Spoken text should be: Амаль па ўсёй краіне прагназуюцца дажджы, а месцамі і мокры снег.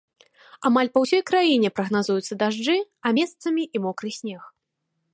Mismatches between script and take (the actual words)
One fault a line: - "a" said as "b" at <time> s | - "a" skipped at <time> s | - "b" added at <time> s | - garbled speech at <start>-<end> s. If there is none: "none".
none